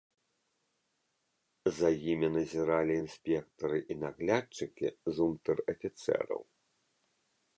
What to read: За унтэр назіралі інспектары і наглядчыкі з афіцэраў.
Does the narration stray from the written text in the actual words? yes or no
yes